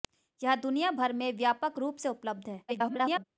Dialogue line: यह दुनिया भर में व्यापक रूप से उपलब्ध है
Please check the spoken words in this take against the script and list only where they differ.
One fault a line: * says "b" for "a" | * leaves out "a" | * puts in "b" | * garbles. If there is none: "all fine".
* garbles